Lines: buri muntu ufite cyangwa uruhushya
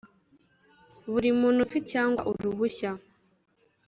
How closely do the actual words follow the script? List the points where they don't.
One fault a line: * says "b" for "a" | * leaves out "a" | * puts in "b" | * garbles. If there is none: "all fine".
all fine